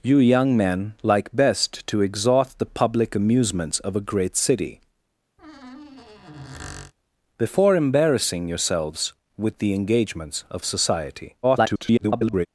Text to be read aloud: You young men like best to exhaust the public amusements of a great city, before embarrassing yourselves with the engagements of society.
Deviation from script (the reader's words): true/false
true